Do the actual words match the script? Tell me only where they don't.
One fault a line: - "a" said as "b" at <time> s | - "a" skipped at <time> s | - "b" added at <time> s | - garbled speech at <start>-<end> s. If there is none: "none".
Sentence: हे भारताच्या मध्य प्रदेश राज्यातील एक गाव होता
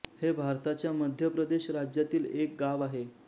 - "होता" said as "आहे" at 2.8 s